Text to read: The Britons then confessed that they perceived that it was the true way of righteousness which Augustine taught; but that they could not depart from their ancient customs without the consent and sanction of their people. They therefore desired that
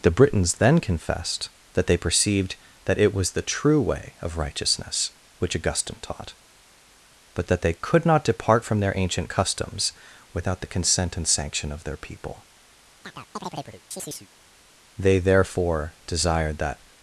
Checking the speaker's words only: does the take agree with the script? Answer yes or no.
yes